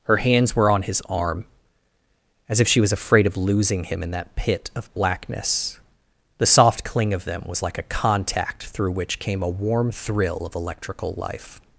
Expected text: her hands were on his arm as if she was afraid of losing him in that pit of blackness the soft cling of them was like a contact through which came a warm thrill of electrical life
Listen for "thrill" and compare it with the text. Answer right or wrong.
right